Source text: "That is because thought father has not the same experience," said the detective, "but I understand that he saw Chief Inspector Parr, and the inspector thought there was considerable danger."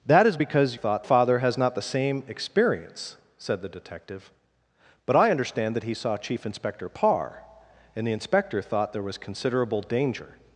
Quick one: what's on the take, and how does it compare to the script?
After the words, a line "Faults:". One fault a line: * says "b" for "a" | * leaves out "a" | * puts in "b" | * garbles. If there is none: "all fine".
"That is because thought father has not the same experience," said the detective, "but I understand that he saw Chief Inspector Parr, and the inspector thought there was considerable danger."
Faults:
all fine